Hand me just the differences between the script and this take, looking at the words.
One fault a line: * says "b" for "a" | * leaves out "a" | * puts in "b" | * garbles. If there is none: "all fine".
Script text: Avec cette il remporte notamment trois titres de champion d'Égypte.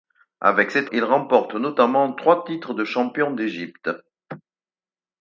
all fine